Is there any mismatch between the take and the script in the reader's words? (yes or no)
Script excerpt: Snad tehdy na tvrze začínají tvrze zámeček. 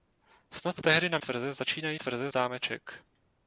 no